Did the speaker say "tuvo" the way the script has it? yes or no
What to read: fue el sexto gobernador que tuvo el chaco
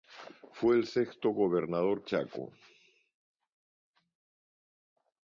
no